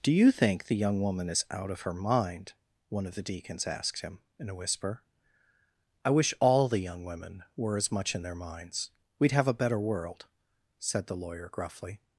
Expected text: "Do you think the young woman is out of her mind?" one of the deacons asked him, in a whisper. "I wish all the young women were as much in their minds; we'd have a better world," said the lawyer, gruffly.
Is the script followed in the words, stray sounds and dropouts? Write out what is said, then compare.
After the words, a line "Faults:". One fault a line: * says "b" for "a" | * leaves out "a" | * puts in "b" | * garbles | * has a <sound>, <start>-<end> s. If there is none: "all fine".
"Do you think the young woman is out of her mind?" one of the deacons asked him, in a whisper. "I wish all the young women were as much in their minds; we'd have a better world," said the lawyer, gruffly.
Faults:
all fine